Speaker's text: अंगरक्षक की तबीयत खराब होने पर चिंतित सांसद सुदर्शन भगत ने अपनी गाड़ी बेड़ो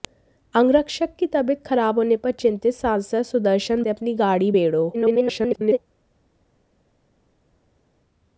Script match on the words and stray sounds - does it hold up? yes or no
no